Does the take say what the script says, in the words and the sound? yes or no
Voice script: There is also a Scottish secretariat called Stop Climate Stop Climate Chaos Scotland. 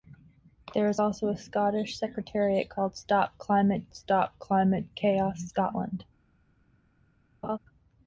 no